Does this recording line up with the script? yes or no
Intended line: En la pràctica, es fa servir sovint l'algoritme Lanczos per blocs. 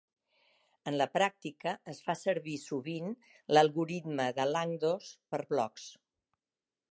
no